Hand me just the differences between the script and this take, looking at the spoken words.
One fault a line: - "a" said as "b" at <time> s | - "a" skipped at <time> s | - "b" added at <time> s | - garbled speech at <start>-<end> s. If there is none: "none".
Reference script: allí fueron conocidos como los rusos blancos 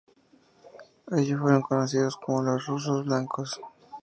none